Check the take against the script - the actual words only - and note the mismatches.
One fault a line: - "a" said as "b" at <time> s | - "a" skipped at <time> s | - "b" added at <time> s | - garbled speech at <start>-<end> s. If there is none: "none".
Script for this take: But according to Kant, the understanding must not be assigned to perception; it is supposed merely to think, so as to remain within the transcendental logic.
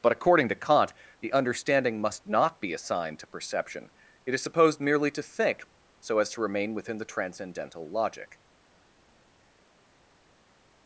none